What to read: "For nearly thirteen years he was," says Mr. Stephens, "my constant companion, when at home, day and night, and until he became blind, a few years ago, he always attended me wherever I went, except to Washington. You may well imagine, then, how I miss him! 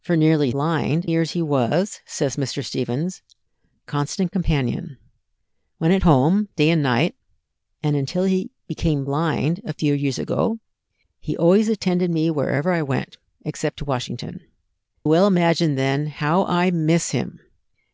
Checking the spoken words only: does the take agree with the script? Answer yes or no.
no